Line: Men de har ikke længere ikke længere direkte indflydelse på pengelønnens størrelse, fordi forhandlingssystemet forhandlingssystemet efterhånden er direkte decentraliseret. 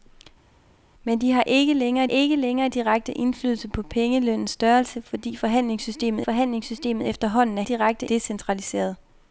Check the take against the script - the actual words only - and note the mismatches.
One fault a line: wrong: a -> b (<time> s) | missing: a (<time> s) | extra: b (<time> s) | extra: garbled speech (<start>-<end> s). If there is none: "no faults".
no faults